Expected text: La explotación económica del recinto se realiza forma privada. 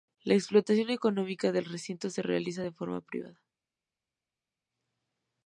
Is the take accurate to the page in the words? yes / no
no